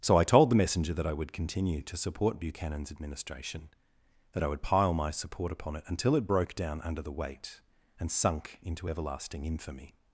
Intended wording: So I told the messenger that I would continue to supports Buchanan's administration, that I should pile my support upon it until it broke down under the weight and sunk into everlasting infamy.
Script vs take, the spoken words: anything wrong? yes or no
yes